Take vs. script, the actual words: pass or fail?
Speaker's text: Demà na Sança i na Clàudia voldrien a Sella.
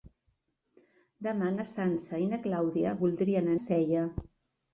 pass